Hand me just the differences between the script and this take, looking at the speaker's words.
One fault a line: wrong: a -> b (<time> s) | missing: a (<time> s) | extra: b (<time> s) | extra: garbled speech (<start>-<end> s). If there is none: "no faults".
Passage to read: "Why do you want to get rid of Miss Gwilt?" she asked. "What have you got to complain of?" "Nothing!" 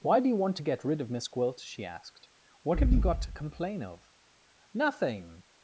no faults